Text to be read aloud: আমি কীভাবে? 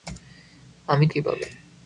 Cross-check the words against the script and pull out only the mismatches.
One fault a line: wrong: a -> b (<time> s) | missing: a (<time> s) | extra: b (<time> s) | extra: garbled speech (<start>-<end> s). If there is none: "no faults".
no faults